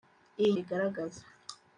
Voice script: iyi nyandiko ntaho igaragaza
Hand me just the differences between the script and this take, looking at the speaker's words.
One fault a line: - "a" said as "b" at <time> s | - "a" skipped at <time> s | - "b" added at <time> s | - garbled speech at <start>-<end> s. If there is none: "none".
- "nyandiko ntaho" skipped at 0.5 s